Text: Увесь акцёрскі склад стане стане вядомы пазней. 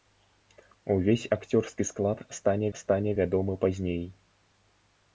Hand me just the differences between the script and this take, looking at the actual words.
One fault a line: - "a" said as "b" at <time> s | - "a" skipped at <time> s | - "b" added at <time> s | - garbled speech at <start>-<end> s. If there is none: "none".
none